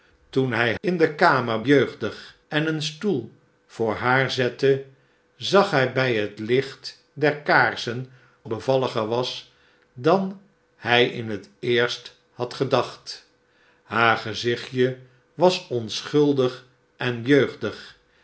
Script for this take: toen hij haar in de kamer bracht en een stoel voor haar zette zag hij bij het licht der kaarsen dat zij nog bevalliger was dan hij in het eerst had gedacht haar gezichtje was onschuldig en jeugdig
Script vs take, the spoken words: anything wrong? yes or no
yes